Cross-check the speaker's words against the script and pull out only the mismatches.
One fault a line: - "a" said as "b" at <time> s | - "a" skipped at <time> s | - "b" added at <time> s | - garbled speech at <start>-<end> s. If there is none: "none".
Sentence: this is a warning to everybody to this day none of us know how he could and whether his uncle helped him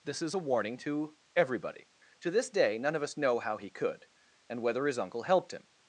none